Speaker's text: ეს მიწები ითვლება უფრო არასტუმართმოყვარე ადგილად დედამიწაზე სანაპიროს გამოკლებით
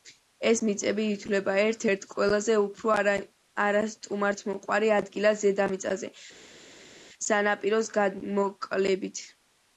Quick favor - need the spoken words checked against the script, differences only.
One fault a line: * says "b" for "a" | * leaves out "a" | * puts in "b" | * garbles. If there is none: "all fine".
* puts in "ერთ ერთ ყველაზე"